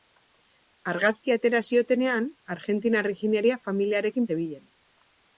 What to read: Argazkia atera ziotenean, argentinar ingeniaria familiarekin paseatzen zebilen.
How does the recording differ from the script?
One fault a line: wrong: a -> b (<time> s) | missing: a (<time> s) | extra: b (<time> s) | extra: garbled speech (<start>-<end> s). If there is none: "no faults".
missing: paseatzen (4.3 s)